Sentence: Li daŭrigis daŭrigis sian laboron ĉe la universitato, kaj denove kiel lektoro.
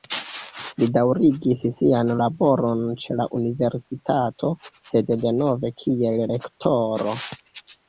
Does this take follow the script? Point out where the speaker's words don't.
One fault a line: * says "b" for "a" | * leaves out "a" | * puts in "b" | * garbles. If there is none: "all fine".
* leaves out "daŭrigis"
* says "sed" for "kaj"